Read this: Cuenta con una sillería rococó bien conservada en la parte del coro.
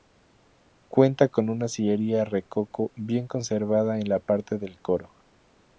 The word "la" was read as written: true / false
true